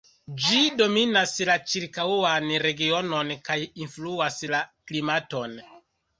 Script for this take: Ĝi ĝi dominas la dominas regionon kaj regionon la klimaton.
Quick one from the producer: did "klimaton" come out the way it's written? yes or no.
yes